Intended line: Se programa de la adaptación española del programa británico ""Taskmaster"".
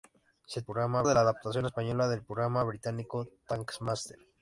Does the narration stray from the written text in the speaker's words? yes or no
no